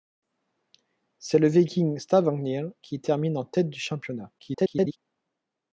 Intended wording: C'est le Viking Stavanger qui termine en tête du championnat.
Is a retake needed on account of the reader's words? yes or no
yes